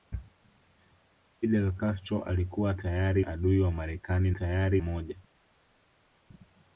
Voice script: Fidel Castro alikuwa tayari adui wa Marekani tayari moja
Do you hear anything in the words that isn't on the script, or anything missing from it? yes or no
no